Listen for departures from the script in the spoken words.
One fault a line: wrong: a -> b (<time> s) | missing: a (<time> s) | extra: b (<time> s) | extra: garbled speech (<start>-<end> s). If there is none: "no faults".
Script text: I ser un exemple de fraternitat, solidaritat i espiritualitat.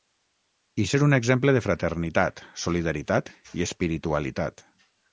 no faults